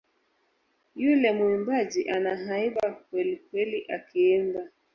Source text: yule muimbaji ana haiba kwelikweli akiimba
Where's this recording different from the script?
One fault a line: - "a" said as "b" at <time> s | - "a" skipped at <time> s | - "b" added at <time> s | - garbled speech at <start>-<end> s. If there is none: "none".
none